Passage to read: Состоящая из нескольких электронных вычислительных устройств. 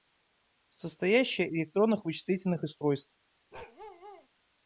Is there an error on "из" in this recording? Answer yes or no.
yes